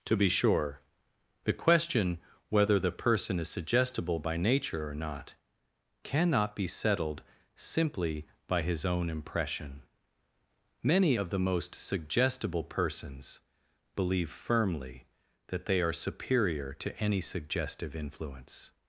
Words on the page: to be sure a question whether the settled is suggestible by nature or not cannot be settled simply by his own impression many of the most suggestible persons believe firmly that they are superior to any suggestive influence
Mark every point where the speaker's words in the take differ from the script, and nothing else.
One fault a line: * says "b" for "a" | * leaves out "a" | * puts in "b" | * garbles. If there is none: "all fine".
* says "the" for "a"
* says "person" for "settled"